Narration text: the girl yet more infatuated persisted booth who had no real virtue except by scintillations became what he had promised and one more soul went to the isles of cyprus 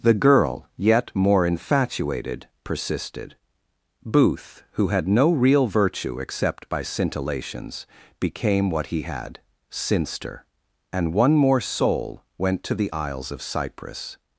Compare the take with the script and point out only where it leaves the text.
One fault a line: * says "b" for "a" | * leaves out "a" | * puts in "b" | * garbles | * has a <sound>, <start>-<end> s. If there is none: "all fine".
* says "sinster" for "promised"